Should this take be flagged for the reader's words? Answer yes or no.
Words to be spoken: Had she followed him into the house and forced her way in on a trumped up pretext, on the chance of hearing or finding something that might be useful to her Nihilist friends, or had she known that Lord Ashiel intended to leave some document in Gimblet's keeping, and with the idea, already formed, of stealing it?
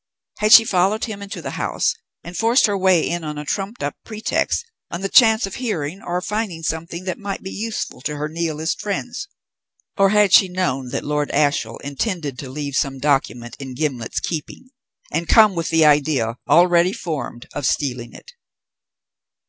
yes